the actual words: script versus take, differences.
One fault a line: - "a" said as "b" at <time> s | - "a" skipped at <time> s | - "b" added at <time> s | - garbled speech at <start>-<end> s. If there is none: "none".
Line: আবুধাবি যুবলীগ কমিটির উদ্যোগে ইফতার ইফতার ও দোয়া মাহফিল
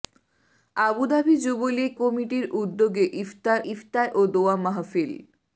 none